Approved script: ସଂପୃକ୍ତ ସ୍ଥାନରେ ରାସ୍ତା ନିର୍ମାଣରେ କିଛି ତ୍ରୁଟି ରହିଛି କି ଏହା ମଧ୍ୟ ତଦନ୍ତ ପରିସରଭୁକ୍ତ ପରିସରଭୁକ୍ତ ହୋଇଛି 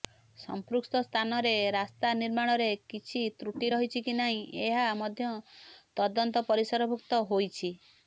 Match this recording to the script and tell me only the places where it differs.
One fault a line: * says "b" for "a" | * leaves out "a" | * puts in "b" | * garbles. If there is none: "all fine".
* puts in "ନାହିଁ"
* leaves out "ପରିସରଭୁକ୍ତ"